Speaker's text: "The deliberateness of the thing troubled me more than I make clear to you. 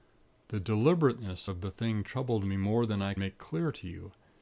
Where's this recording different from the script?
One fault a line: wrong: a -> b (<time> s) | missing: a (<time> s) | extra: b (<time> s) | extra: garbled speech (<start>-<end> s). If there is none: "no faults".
no faults